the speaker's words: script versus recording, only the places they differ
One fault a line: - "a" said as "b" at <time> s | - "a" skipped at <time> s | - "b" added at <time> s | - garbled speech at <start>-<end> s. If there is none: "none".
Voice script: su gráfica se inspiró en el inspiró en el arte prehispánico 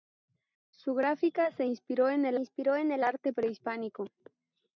none